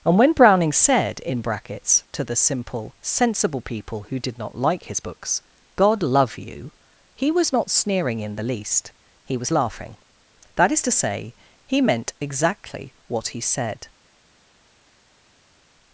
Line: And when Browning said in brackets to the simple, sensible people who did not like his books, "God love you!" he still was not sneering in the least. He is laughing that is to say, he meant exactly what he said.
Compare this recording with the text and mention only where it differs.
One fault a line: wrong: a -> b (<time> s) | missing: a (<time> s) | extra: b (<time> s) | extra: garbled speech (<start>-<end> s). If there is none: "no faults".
missing: still (7.3 s)
wrong: is -> was (9.4 s)